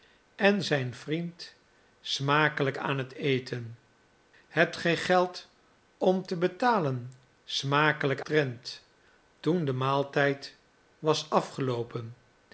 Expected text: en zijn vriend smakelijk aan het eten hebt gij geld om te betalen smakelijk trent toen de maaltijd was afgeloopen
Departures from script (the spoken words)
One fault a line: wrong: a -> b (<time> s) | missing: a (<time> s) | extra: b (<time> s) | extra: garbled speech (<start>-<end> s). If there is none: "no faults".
no faults